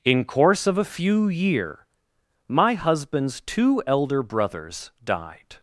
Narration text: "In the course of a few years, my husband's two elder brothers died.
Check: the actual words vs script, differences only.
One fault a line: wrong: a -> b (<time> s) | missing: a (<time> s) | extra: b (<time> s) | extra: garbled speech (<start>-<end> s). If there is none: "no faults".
missing: the (0.2 s)
wrong: years -> year (1.3 s)